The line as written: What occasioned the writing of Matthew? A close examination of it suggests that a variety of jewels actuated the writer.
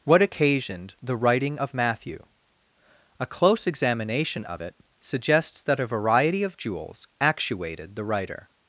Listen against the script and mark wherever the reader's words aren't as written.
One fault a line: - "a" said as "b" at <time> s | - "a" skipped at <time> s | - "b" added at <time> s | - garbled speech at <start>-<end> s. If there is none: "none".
none